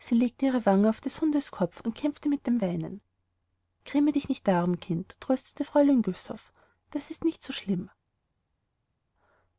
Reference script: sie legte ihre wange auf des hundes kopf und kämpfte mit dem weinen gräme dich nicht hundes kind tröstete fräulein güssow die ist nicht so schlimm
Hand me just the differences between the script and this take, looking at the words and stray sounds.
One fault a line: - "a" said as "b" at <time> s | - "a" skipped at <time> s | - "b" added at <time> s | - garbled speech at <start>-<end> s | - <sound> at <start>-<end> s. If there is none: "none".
- "hundes" said as "darum" at 4.5 s
- "die" said as "das" at 6.9 s